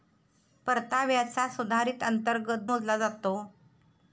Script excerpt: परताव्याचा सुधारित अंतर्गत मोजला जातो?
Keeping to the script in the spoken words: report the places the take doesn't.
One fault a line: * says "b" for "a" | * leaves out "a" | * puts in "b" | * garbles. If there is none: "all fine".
all fine